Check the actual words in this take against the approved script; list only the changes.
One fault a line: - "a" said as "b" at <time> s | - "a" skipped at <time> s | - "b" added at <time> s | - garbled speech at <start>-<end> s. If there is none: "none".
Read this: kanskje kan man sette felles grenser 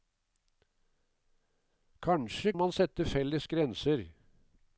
- "kan" skipped at 2.5 s